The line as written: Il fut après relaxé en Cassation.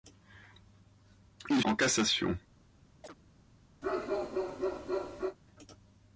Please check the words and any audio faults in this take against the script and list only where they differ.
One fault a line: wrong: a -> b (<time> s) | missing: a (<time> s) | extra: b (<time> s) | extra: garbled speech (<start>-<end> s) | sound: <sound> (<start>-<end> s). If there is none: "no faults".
missing: fut après relaxé (1.6 s)
sound: chirp (3.0-3.2 s)
sound: bark (3.8-5.4 s)